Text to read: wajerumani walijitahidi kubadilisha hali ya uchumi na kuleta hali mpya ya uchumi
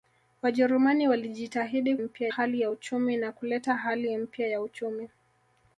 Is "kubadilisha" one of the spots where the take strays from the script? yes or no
yes